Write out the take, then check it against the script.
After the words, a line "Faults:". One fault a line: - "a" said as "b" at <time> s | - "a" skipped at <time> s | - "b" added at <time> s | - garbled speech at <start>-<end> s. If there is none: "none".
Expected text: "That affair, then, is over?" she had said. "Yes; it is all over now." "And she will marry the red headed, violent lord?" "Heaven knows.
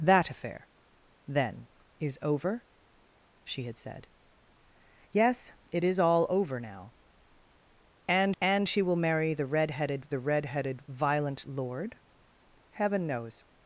"That affair, then, is over?" she had said. "Yes; it is all over now." "And and she will marry the red headed the red headed, violent lord?" "Heaven knows.
Faults:
- "and" added at 8.4 s
- "the red headed" added at 10.1 s